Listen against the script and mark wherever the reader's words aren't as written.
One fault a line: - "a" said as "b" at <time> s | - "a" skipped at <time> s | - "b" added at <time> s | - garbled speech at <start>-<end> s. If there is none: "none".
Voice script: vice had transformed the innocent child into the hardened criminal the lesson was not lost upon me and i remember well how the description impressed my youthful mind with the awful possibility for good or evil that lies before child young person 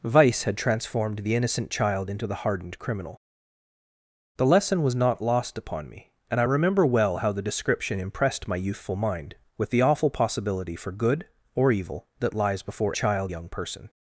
none